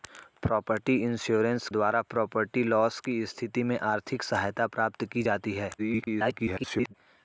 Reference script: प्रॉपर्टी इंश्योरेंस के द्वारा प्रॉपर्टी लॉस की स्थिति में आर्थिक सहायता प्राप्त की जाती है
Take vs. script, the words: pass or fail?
fail